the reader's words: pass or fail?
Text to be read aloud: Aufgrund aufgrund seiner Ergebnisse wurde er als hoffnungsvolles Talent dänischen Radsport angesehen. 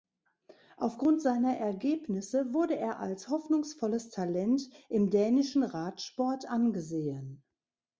fail